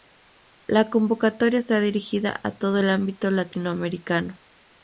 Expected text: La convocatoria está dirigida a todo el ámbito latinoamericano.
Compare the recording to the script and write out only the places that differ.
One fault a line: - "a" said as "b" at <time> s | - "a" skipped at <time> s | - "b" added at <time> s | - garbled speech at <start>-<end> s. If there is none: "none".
none